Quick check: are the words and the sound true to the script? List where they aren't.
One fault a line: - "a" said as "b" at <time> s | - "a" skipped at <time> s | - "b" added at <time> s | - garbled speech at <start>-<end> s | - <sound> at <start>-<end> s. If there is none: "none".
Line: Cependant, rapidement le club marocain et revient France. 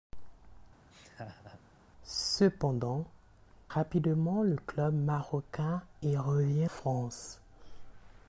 - laugh at 0.9-1.6 s